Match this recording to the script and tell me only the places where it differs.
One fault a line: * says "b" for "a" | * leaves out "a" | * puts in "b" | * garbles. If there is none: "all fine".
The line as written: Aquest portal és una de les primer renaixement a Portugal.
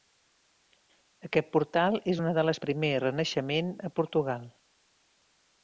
all fine